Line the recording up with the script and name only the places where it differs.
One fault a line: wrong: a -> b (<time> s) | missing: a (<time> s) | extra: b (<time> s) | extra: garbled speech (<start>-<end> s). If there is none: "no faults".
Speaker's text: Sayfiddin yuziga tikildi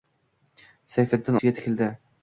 no faults